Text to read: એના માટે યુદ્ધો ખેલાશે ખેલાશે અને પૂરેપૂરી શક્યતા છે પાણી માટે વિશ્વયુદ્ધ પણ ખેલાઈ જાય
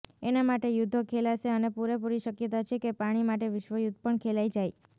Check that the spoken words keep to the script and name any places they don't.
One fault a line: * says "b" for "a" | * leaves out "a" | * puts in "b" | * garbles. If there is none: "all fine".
* leaves out "ખેલાશે"
* puts in "કે"